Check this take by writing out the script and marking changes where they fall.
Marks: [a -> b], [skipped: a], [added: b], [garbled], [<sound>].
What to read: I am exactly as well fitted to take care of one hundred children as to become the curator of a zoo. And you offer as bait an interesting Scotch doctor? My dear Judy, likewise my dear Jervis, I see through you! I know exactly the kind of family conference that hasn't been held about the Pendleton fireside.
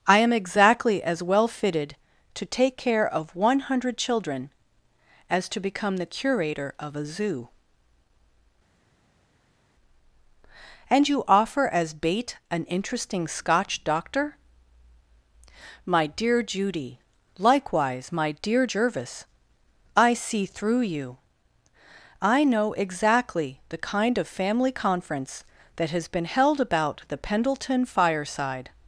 I am exactly as well fitted to take care of one hundred children as to become the curator of a zoo. And you offer as bait an interesting Scotch doctor? My dear Judy, likewise my dear Jervis, I see through you! I know exactly the kind of family conference that [hasn't -> has] been held about the Pendleton fireside.